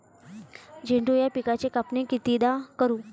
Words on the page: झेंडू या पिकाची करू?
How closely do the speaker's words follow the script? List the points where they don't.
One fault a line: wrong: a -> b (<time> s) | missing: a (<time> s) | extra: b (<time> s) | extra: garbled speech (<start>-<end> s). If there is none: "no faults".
extra: कापनी कितीदा (1.7 s)